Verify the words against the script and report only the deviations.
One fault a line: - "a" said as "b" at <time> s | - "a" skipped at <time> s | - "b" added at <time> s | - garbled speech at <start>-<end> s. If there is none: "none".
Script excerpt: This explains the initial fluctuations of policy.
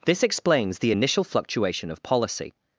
- "fluctuations" said as "fluctuation" at 1.3 s